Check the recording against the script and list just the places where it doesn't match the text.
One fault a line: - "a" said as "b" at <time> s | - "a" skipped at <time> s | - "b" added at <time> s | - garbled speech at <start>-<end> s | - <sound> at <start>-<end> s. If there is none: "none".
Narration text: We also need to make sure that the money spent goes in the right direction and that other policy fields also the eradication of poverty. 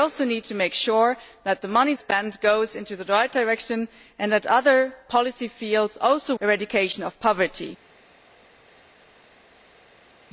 none